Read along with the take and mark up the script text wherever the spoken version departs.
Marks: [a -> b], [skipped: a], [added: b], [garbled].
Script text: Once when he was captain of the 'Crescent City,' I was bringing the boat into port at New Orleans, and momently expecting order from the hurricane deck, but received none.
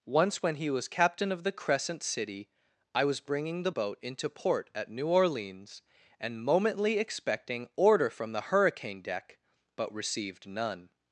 Once when he was captain of the 'Crescent City,' I was bringing the boat into port at New Orleans, and momently expecting order from the hurricane deck, but received none.